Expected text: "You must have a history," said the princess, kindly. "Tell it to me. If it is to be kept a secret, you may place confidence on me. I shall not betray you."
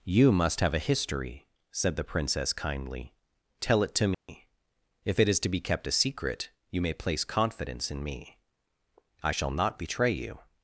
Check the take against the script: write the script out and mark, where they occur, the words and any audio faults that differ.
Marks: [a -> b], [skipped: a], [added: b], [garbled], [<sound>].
"You must have a history," said the princess, kindly. "Tell it to me. [dropout] If it is to be kept a secret, you may place confidence [on -> in] me. I shall not betray you."